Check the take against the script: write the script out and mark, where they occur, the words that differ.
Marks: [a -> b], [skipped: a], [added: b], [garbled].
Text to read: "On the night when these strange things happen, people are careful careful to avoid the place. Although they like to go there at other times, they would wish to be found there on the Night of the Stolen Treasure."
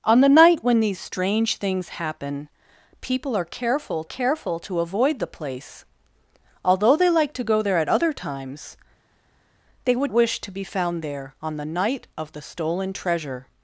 "On the night when these strange things happen, people are careful careful to avoid the place. Although they like to go there at other times, they would wish to be found there on the Night of the Stolen Treasure."